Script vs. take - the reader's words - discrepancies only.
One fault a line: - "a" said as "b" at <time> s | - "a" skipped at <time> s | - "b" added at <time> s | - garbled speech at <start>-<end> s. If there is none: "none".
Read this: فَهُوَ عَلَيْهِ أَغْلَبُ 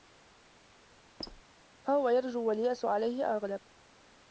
- "يَرْجُو وَالْيَأْسُ" added at 2.1 s